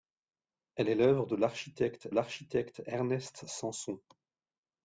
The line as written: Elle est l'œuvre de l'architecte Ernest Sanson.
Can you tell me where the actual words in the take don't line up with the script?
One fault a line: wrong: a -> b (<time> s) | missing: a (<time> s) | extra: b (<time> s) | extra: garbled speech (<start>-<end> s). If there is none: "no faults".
extra: l'architecte (2.1 s)